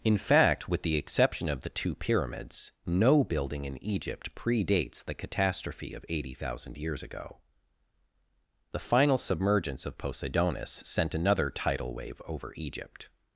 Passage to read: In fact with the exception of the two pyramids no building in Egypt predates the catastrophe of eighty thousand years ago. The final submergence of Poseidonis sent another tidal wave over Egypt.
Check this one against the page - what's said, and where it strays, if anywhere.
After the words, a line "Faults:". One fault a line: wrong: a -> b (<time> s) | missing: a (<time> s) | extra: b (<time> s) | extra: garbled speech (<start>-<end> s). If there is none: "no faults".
In fact with the exception of the two pyramids no building in Egypt predates the catastrophe of eighty thousand years ago. The final submergence of Poseidonis sent another tidal wave over Egypt.
Faults:
no faults